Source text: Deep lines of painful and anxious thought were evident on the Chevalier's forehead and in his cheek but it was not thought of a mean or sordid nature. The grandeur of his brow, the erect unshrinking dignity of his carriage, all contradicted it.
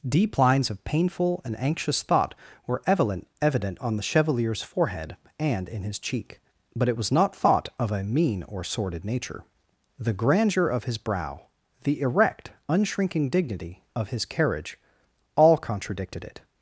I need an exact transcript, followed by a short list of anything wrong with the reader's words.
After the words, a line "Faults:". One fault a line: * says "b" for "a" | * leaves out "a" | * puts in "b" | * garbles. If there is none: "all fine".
Deep lines of painful and anxious thought were evident evident on the Chevalier's forehead and in his cheek but it was not thought of a mean or sordid nature. The grandeur of his brow, the erect unshrinking dignity of his carriage, all contradicted it.
Faults:
* puts in "evident"